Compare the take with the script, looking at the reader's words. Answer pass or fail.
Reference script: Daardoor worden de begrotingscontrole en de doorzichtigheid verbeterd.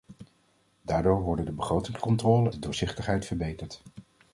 fail